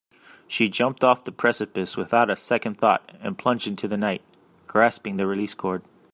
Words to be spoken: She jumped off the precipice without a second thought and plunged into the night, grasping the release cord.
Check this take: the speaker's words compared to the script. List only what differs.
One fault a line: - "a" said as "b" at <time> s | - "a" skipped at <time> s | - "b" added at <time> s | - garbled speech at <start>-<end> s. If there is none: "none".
none